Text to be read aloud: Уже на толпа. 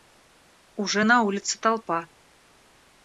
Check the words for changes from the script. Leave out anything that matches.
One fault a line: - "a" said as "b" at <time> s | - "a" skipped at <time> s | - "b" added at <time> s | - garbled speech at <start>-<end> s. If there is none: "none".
- "улице" added at 1.2 s